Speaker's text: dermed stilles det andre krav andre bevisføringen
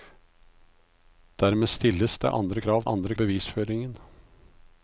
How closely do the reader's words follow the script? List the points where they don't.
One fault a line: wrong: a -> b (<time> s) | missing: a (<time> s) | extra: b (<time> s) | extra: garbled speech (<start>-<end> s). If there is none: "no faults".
no faults